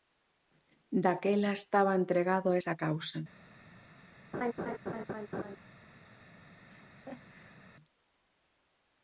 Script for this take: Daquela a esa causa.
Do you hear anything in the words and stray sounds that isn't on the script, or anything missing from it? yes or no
yes